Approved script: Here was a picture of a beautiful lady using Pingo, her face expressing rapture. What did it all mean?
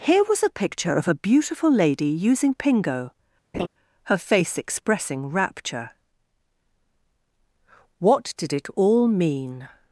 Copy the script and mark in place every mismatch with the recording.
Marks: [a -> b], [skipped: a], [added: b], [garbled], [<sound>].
Here was a picture of a beautiful lady using Pingo, [laugh] her face expressing rapture. What did it all mean?